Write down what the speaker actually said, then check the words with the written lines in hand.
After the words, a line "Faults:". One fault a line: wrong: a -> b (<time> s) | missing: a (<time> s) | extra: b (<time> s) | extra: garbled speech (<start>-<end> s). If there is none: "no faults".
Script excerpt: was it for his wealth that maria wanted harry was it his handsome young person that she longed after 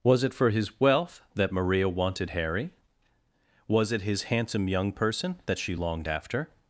was it for his wealth that maria wanted harry was it his handsome young person that she longed after
Faults:
no faults